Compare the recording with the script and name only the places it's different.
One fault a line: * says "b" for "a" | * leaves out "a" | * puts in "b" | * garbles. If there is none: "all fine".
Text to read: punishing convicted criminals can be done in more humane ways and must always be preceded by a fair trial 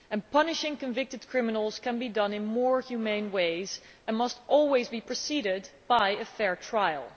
all fine